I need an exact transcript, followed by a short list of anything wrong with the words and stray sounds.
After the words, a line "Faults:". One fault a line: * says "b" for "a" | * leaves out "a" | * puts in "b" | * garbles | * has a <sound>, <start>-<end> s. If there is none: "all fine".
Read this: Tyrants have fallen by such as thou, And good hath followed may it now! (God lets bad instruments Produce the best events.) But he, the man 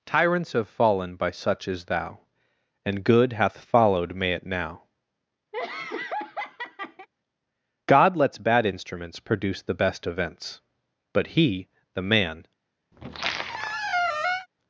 Tyrants have fallen by such as thou, And good hath followed may it now! (God lets bad instruments Produce the best events.) But he, the man
Faults:
* has a laugh, 5.5-7.1 s
* has a squeak, 12.9-14.5 s